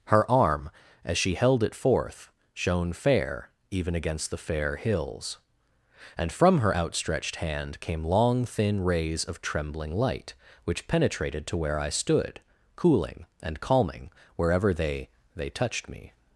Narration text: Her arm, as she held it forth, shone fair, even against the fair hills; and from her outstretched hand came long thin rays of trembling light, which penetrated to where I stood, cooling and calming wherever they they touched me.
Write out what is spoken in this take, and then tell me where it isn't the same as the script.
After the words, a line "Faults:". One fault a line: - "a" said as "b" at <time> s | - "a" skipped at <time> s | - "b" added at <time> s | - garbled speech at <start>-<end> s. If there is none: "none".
Her arm, as she held it forth, shone fair, even against the fair hills; and from her outstretched hand came long thin rays of trembling light, which penetrated to where I stood, cooling and calming wherever they they touched me.
Faults:
none